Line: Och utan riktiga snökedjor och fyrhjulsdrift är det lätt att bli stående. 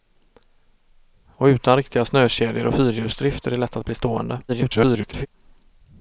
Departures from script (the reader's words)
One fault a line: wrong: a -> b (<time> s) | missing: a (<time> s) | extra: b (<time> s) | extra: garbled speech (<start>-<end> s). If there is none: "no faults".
extra: garbled speech (4.5-5.3 s)